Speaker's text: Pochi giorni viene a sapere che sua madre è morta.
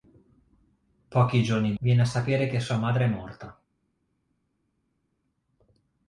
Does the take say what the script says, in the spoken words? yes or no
yes